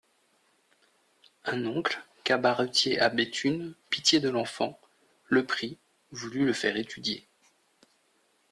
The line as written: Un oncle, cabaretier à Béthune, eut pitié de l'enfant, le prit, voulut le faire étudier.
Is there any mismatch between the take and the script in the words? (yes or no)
yes